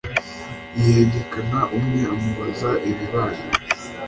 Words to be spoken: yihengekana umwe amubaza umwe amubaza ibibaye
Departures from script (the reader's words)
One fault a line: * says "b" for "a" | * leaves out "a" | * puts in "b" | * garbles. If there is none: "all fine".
* leaves out "umwe amubaza"